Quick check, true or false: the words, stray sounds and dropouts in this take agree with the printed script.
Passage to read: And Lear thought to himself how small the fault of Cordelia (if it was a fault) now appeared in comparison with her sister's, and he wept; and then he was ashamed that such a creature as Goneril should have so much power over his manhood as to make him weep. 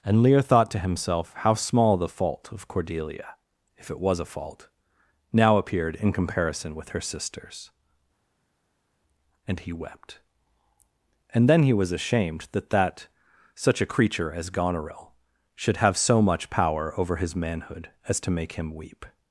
false